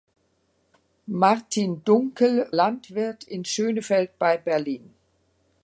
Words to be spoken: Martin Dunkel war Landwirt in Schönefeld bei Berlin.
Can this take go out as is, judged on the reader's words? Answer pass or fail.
fail